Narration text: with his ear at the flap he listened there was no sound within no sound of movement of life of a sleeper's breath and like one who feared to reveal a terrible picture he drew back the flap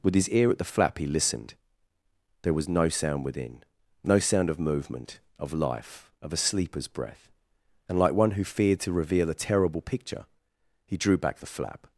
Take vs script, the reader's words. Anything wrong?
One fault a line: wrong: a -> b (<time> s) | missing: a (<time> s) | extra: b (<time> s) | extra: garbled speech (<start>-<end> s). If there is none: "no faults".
no faults